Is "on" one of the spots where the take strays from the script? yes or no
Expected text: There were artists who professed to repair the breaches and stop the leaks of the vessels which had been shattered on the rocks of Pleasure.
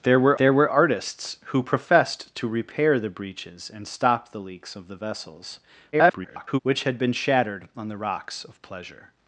no